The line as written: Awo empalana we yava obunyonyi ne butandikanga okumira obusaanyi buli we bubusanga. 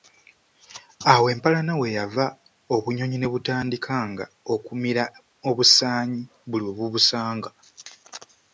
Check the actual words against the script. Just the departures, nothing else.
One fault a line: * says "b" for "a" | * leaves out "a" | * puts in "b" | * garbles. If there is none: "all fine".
all fine